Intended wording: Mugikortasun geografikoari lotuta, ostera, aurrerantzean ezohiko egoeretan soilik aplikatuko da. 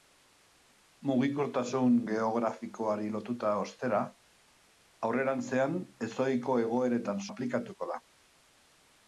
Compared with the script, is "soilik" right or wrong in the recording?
wrong